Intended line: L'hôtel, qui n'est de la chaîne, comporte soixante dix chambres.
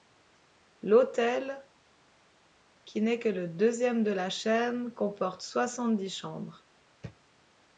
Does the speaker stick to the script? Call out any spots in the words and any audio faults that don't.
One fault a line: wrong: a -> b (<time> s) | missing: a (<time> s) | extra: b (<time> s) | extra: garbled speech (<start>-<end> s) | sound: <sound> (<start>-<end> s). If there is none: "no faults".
extra: que le deuxième (3.2 s)